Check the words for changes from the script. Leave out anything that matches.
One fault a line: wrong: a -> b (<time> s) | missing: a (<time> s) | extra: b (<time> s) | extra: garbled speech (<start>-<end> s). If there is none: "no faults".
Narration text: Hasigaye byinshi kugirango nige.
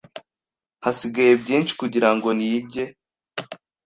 no faults